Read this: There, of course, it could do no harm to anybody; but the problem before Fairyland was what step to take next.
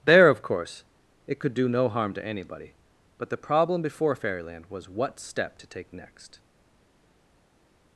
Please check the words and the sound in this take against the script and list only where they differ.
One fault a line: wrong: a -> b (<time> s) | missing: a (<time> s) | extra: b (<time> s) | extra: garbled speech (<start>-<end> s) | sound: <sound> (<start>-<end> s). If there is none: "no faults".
no faults